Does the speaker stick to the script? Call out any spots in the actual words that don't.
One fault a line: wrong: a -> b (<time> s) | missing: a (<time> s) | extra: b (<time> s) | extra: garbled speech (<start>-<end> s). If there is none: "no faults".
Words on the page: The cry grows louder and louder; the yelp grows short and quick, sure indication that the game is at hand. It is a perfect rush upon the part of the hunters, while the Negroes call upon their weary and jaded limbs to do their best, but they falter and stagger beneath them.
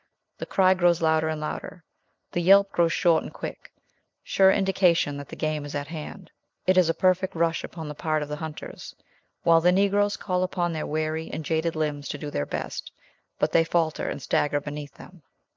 no faults